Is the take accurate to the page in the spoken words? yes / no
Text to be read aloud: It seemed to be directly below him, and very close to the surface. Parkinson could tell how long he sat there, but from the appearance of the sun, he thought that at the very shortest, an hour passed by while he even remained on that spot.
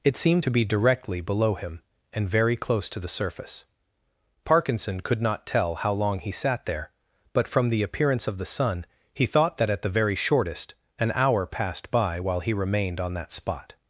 no